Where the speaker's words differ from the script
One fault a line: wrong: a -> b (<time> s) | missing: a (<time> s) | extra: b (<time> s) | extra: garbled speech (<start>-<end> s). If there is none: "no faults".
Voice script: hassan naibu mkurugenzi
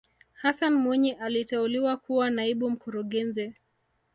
extra: mwinyi aliteuliwa kuwa (0.8 s)